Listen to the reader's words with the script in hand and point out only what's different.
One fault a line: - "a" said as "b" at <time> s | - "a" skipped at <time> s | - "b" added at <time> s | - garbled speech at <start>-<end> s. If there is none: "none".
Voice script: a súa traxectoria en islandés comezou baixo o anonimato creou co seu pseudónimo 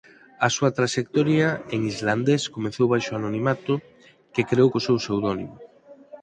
- "que" added at 4.3 s